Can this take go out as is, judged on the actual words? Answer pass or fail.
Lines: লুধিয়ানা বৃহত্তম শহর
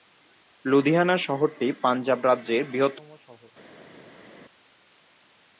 fail